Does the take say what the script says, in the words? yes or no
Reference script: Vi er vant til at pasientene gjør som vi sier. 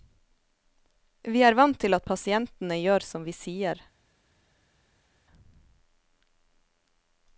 yes